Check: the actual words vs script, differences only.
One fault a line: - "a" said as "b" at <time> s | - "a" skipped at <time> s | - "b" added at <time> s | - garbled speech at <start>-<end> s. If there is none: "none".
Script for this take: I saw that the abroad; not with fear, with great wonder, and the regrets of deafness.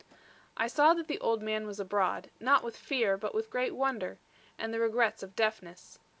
- "old man was" added at 1.2 s
- "but" added at 3.2 s